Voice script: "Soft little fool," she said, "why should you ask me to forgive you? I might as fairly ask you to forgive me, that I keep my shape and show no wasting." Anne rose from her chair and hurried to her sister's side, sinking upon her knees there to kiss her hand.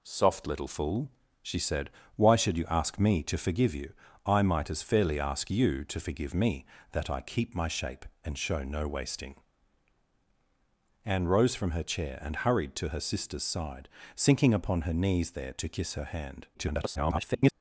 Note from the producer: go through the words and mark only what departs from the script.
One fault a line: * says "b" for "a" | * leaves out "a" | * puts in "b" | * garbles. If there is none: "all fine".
* garbles